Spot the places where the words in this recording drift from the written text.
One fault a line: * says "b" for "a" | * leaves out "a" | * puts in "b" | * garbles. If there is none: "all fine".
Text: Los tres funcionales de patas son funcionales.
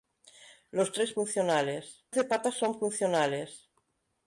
all fine